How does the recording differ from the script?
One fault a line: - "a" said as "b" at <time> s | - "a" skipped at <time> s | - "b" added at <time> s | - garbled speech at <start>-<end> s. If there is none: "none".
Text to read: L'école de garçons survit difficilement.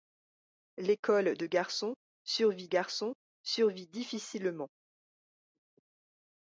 - "garçons survit" added at 2.6 s